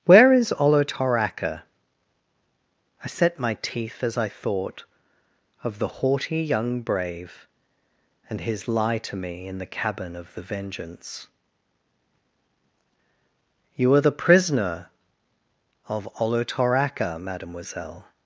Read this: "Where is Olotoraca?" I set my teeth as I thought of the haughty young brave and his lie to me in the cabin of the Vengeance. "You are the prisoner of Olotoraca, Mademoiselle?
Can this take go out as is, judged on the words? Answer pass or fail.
pass